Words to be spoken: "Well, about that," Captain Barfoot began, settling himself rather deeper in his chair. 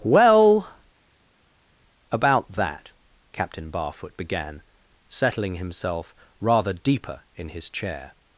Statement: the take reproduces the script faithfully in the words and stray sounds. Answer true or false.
true